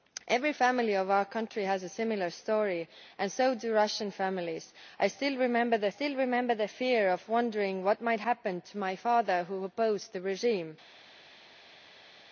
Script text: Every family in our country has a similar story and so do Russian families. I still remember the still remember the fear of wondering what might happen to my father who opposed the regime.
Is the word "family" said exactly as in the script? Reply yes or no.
yes